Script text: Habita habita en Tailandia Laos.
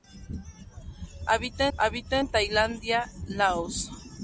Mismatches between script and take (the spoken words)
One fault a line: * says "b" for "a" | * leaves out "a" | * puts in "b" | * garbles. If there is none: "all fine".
all fine